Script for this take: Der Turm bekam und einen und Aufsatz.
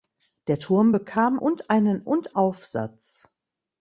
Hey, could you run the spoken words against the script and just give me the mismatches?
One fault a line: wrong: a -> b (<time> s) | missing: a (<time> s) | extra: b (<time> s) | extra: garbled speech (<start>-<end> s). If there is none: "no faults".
no faults